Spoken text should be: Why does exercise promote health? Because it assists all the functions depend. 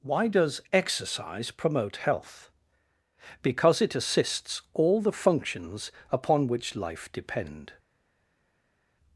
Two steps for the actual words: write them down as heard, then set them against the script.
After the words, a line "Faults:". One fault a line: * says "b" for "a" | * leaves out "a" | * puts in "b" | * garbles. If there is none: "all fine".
Why does exercise promote health? Because it assists all the functions upon which life depend.
Faults:
* puts in "upon which life"